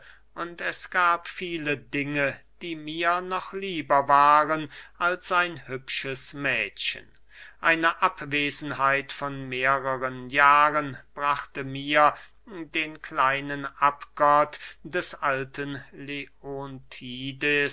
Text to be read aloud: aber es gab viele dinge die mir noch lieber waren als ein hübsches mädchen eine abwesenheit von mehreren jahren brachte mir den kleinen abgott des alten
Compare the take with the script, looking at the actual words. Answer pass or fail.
fail